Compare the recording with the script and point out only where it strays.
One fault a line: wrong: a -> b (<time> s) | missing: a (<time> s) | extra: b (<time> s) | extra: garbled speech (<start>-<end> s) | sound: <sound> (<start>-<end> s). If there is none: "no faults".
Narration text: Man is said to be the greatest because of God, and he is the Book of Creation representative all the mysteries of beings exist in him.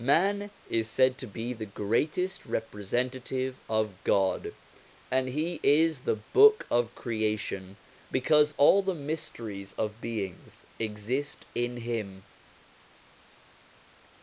wrong: because -> representative (2.5 s)
wrong: representative -> because (8.1 s)